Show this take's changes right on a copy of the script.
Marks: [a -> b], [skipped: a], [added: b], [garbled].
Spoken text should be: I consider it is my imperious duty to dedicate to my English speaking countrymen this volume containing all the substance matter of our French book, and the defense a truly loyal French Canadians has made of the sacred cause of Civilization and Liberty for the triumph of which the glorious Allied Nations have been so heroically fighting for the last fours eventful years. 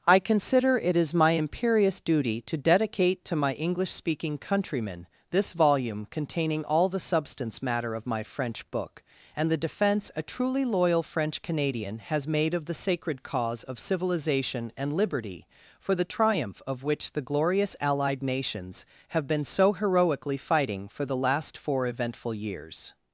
I consider it is my imperious duty to dedicate to my English speaking countrymen this volume containing all the substance matter of [our -> my] French book, and the defense a truly loyal French [Canadians -> Canadian] has made of the sacred cause of Civilization and Liberty for the triumph of which the glorious Allied Nations have been so heroically fighting for the last [fours -> four] eventful years.